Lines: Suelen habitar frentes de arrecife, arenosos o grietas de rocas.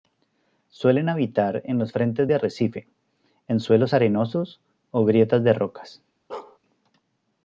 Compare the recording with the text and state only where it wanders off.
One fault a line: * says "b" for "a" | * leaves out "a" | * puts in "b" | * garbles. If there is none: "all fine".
* puts in "en los"
* puts in "en suelos"